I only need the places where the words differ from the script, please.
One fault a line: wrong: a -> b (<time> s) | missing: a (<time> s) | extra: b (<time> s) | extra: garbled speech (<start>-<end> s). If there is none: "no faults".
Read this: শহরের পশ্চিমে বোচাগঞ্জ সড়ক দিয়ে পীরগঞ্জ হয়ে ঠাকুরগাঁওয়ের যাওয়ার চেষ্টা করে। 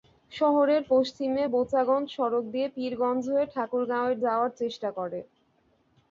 no faults